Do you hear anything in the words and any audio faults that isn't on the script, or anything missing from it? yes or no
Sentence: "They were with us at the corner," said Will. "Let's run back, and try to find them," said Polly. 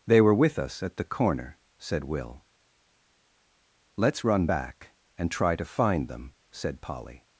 no